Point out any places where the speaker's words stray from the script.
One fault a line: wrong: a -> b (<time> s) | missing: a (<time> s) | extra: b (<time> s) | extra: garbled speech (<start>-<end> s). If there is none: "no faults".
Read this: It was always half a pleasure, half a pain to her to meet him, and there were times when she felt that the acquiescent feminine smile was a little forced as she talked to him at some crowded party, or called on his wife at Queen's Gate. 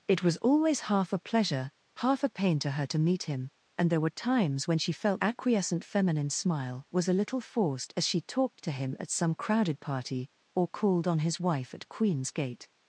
missing: that the (5.2 s)